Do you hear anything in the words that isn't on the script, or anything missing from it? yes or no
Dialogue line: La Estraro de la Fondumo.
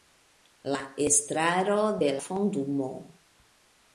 yes